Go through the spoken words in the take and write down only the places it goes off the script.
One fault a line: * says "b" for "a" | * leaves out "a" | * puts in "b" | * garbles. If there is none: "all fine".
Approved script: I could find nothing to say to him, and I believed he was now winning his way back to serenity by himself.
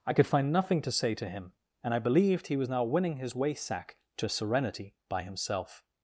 * says "sack" for "back"